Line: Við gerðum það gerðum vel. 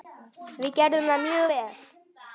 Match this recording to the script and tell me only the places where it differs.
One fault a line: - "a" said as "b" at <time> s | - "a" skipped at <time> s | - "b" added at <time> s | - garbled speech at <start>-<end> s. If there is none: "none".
- "gerðum" said as "mjög" at 1.3 s